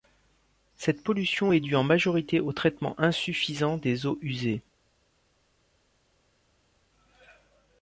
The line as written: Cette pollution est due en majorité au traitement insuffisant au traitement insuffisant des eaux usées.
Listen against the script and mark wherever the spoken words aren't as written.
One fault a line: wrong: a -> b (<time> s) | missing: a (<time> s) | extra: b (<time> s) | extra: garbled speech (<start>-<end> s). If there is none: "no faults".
missing: au traitement insuffisant (3.8 s)